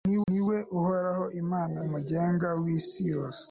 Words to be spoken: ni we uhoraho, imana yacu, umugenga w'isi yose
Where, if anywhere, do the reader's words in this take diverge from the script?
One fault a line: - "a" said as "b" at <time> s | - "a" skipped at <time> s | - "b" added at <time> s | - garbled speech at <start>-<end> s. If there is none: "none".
- "ni" added at 0.3 s
- "yacu" skipped at 1.8 s